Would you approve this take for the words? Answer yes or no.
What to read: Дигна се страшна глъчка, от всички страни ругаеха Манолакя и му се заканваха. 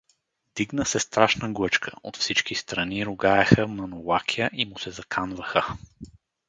yes